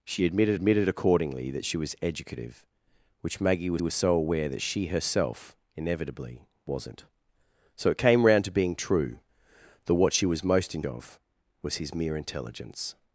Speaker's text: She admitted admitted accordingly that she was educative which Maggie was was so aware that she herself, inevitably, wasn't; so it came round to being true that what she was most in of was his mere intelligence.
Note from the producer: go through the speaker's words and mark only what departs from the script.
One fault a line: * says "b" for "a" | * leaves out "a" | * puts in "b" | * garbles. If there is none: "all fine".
all fine